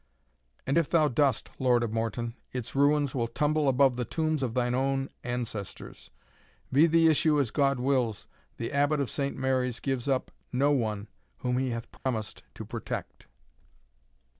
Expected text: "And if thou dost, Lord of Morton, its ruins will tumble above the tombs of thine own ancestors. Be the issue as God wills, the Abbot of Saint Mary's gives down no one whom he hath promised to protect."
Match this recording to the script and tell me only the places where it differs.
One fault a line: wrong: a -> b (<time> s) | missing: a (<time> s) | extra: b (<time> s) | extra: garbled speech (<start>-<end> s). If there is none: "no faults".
wrong: down -> up (10.1 s)